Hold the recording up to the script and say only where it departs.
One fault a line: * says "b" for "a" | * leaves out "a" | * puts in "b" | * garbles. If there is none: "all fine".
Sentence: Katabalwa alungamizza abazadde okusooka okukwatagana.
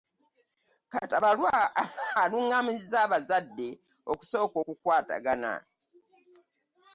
all fine